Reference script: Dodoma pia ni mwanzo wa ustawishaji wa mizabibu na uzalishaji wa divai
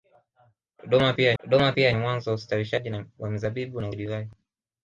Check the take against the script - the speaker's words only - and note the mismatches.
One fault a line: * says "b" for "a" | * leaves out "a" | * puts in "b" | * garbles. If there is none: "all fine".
* puts in "dodoma pia"
* leaves out "uzalishaji"